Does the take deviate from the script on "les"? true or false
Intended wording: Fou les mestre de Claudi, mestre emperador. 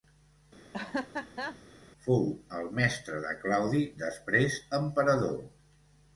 true